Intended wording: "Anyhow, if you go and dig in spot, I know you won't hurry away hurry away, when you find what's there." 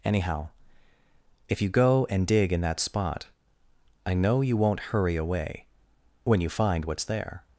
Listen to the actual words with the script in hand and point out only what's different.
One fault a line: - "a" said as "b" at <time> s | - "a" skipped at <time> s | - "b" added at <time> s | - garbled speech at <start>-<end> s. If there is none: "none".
- "that" added at 2.6 s
- "hurry away" skipped at 5.7 s